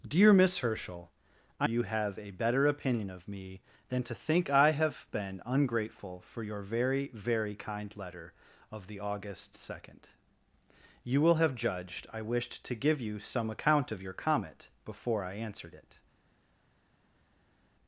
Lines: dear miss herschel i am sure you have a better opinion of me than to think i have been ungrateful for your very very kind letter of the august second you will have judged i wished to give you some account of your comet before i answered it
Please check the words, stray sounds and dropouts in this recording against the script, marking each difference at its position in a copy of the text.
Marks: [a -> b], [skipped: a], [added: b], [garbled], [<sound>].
dear miss herschel i [skipped: am sure] you have a better opinion of me than to think i have been ungrateful for your very very kind letter of the august second you will have judged i wished to give you some account of your comet before i answered it